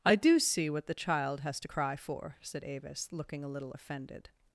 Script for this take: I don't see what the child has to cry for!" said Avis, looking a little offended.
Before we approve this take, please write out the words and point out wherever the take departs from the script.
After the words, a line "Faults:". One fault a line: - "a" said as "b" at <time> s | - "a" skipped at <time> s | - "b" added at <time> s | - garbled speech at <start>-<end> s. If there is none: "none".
I do see what the child has to cry for!" said Avis, looking a little offended.
Faults:
- "don't" said as "do" at 0.1 s